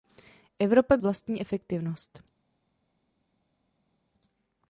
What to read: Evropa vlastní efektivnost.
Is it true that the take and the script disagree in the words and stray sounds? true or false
false